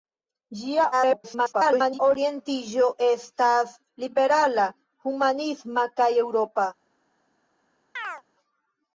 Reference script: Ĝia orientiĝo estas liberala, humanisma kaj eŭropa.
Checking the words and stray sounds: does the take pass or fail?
fail